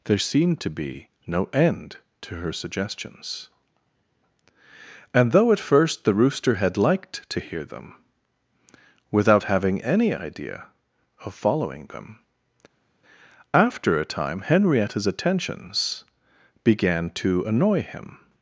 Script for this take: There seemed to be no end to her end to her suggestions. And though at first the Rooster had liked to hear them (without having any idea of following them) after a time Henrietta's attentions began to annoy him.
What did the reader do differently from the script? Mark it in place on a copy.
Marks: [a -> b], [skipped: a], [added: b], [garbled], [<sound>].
There seemed to be no end to her [skipped: end to her] suggestions. And though at first the Rooster had liked to hear them (without having any idea of following them) after a time Henrietta's attentions began to annoy him.